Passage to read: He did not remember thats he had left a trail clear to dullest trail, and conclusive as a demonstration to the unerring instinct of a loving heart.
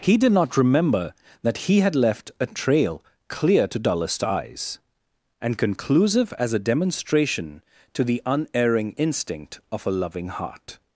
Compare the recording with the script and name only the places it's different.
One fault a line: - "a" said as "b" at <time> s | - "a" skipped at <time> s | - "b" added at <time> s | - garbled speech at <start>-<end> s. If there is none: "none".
- "thats" said as "that" at 1.4 s
- "trail" said as "eyes" at 4.2 s